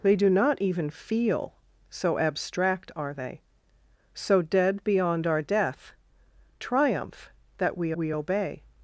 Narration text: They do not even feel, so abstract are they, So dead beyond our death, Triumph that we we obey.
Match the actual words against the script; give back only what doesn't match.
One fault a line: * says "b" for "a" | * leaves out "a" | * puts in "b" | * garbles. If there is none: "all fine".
all fine